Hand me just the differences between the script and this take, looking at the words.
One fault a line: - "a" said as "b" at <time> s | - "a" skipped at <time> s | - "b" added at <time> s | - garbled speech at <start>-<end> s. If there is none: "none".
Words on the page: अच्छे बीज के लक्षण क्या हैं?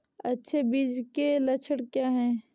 none